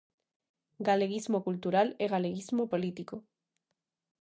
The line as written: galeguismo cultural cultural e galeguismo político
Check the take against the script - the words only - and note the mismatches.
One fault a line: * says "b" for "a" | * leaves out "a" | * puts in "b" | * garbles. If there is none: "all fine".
* leaves out "cultural"